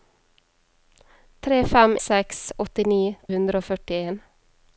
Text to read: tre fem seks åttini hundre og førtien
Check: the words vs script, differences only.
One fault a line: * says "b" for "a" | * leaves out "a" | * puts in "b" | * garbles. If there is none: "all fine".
all fine